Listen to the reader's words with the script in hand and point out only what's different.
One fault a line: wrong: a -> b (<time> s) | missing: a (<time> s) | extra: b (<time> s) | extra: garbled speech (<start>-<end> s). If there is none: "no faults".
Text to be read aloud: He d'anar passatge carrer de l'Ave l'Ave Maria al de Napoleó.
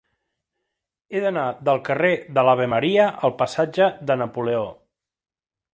wrong: passatge -> del (1.7 s)
missing: l'Ave (2.7 s)
extra: passatge (3.4 s)